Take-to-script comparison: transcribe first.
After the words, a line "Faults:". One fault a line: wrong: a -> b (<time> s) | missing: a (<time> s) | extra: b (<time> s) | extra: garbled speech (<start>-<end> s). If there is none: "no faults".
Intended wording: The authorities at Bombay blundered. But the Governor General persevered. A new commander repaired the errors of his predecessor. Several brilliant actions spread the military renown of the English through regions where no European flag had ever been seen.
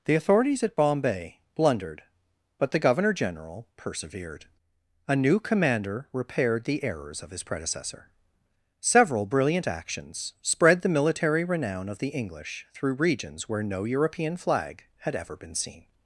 The authorities at Bombay blundered. But the Governor General persevered. A new commander repaired the errors of his predecessor. Several brilliant actions spread the military renown of the English through regions where no European flag had ever been seen.
Faults:
no faults